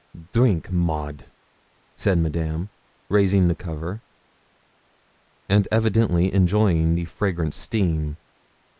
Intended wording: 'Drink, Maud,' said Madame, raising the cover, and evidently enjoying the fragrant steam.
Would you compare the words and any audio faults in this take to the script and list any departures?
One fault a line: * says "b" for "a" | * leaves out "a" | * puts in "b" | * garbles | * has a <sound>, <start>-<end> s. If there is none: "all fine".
all fine